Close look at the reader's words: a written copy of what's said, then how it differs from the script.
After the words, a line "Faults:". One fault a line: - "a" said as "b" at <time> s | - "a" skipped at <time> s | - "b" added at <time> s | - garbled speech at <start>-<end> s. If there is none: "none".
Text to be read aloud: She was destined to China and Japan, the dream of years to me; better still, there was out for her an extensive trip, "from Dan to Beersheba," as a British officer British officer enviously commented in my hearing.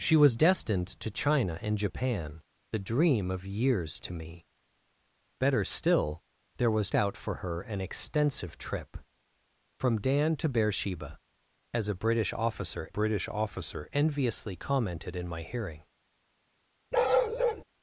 She was destined to China and Japan, the dream of years to me; better still, there was out for her an extensive trip, "from Dan to Beersheba," as a British officer British officer enviously commented in my hearing.
Faults:
none